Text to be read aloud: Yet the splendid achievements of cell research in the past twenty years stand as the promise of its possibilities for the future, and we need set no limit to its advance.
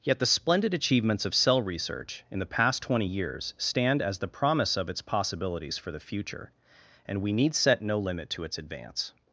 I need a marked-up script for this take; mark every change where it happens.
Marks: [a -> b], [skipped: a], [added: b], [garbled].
Yet the splendid achievements of cell research in the past twenty years stand as the promise of its possibilities for the future, and we need set no limit to its advance.